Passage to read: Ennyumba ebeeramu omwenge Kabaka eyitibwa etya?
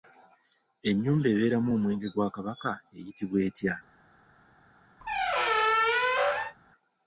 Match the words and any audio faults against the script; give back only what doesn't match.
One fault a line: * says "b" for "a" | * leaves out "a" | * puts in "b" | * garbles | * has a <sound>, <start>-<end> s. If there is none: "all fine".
* puts in "gwa"
* has a squeak, 5.0-6.6 s